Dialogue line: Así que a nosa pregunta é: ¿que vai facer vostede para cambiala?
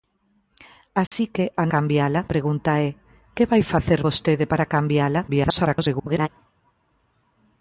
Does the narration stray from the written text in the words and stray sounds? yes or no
yes